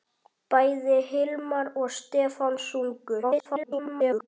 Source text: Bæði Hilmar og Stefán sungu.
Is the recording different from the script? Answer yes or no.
yes